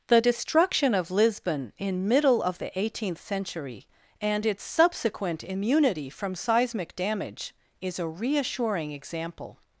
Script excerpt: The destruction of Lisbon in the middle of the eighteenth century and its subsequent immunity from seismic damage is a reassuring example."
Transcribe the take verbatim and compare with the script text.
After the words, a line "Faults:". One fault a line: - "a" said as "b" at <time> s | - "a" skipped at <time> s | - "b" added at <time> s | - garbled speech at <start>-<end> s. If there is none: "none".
The destruction of Lisbon in middle of the eighteenth century and its subsequent immunity from seismic damage is a reassuring example."
Faults:
- "the" skipped at 2.1 s